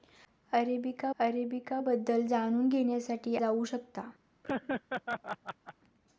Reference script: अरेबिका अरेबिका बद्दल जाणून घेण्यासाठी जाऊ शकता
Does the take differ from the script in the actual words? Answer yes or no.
no